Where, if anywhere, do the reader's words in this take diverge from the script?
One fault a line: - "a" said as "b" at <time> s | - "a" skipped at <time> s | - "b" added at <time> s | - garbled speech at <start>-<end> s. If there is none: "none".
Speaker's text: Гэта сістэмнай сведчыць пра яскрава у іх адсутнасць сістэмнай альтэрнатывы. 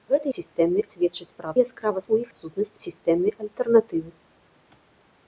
none